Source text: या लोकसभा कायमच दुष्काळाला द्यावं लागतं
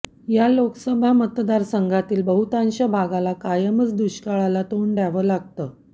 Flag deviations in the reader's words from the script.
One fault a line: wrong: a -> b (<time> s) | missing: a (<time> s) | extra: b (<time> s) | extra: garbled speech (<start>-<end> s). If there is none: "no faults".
extra: मतदारसंघातील बहुतांश भागाला (1.1 s)
extra: तोंड (4.7 s)